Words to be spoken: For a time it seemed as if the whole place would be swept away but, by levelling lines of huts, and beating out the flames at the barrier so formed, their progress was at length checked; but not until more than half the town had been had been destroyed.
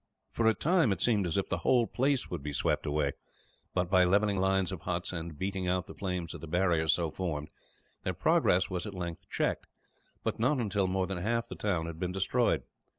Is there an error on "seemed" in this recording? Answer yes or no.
no